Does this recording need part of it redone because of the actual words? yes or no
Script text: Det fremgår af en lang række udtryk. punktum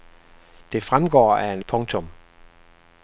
yes